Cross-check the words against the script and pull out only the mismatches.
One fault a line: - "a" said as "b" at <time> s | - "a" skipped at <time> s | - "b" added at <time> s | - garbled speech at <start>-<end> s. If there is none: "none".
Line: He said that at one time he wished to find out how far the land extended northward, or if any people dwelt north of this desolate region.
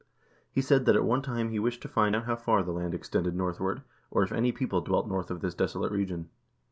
none